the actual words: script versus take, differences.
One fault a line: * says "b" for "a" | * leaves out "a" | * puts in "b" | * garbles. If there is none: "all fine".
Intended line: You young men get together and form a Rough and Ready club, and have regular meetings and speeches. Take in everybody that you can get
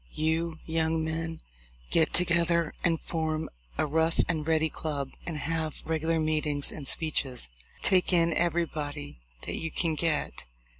all fine